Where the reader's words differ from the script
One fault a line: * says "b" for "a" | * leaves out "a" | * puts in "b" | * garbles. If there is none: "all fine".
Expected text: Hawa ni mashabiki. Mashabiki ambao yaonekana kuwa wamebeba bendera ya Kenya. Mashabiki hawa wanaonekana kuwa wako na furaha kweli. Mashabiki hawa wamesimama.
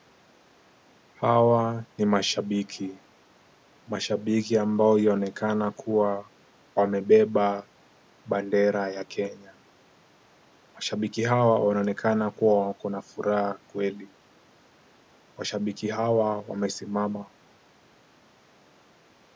all fine